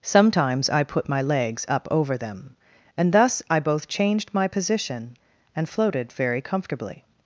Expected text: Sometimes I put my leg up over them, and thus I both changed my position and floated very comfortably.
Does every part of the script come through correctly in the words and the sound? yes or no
no